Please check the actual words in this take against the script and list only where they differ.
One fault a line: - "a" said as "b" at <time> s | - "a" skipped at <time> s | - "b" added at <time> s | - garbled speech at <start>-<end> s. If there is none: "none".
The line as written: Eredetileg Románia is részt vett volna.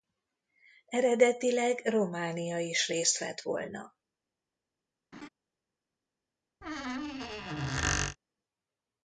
none